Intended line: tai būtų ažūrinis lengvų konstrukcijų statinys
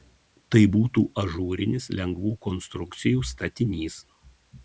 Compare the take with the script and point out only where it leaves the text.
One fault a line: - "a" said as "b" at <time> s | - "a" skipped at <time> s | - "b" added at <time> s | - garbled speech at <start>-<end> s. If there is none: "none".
none